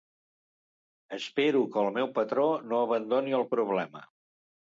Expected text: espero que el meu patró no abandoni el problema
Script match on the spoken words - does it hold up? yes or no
yes